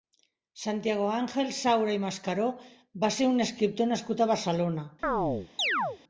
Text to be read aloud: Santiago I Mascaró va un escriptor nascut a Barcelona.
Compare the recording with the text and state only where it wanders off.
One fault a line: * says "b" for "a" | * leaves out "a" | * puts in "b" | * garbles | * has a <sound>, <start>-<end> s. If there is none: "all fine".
* puts in "Àngel Saura"
* puts in "ser"
* has a chirp, 5.0-6.0 s